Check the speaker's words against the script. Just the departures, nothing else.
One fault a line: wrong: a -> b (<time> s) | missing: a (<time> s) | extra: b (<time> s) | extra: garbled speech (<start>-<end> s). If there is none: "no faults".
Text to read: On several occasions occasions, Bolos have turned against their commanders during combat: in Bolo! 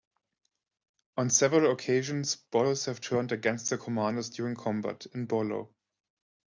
missing: occasions (2.4 s)